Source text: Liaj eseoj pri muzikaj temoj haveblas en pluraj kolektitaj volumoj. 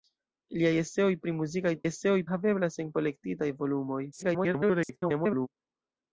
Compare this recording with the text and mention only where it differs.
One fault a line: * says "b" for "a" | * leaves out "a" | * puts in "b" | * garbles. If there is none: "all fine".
* says "eseoj" for "temoj"
* leaves out "pluraj"
* garbles